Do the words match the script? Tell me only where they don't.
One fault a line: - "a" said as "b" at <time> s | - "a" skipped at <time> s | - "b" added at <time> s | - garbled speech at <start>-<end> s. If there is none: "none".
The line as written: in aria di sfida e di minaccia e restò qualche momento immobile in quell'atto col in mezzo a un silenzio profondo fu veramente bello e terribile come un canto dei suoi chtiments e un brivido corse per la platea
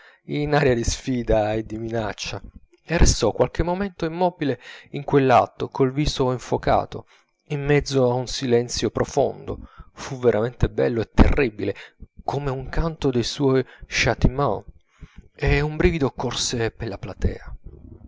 - "viso infocato" added at 5.9 s